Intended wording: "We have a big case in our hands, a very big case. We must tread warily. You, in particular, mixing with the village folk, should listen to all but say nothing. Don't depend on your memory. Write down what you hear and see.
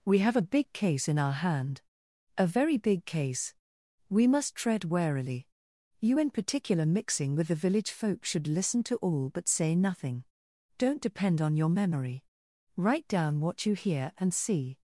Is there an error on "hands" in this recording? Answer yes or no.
yes